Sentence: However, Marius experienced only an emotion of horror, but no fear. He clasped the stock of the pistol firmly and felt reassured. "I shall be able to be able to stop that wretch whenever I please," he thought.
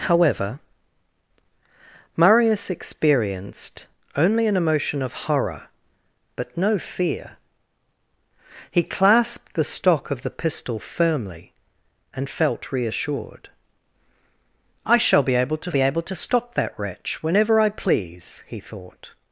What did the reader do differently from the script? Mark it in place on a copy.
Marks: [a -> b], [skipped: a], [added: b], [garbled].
However, Marius experienced only an emotion of horror, but no fear. He clasped the stock of the pistol firmly and felt reassured. "I shall be able to be able to stop that wretch whenever I please," he thought.